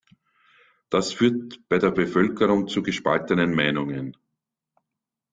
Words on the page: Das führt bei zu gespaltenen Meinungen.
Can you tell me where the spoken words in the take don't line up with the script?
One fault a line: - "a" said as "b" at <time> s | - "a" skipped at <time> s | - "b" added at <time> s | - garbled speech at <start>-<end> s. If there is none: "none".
- "der Bevölkerung" added at 1.8 s